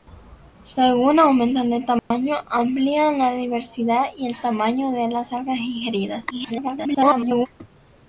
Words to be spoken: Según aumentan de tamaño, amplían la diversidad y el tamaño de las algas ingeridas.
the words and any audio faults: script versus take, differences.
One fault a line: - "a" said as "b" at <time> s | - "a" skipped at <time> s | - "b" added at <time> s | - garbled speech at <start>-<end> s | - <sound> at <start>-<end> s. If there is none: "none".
- dropout at 2.0-2.1 s
- garbled speech at 6.3-7.5 s